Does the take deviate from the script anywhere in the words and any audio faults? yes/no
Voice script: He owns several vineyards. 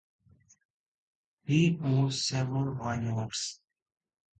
no